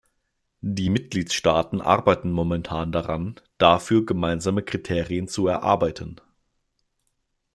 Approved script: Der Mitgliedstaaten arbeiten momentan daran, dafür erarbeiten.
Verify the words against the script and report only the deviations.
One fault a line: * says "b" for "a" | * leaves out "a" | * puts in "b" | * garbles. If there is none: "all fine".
* says "Die" for "Der"
* puts in "gemeinsame Kriterien zu"